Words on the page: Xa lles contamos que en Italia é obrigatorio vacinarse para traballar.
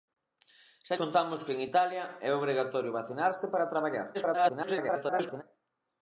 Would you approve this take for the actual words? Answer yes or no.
no